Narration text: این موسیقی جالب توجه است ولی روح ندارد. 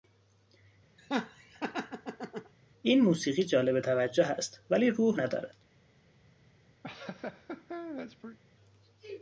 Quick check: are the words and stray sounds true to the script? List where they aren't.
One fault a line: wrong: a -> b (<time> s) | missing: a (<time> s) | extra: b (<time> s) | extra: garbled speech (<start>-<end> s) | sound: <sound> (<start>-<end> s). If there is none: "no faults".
sound: laugh (1.0-2.5 s)
sound: laugh (6.8-8.4 s)